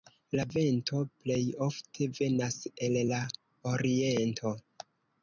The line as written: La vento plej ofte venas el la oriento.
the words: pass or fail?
pass